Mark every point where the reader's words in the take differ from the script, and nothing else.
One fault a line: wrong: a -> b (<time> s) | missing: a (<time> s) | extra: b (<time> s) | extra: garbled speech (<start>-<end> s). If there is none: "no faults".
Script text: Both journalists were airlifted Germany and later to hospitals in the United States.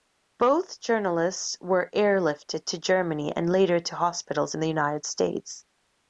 extra: to (2.7 s)